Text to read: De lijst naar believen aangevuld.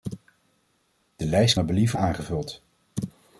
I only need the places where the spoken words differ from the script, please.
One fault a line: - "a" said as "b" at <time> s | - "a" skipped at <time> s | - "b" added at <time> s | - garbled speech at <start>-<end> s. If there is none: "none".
none